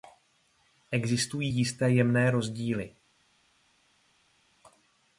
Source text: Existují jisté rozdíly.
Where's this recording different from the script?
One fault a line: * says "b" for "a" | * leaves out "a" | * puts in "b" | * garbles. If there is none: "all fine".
* puts in "jemné"